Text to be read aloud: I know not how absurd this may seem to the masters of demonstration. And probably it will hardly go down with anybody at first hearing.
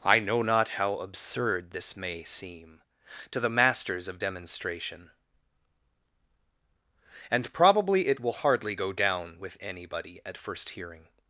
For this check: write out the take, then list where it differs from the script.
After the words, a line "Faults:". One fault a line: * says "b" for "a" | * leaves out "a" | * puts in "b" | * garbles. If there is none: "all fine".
I know not how absurd this may seem to the masters of demonstration. And probably it will hardly go down with anybody at first hearing.
Faults:
all fine